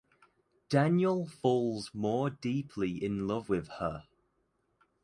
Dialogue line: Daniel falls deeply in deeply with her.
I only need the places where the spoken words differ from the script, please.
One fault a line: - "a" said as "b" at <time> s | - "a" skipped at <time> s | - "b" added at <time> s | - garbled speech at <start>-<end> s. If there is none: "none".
- "more" added at 1.9 s
- "deeply" said as "love" at 3.3 s